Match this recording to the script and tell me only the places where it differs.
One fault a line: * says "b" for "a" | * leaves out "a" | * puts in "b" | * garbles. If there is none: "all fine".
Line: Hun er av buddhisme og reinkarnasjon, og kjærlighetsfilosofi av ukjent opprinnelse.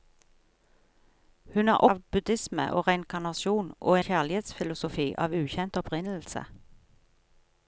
all fine